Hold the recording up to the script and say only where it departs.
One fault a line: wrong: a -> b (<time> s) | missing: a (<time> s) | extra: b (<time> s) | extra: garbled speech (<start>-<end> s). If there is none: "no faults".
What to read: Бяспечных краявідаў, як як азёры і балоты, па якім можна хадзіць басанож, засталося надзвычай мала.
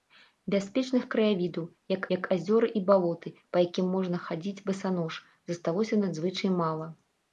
no faults